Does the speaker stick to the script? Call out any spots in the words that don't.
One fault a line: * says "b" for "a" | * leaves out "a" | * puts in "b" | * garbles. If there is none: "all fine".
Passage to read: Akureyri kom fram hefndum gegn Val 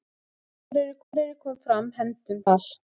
* puts in "akureyri"
* leaves out "gegn"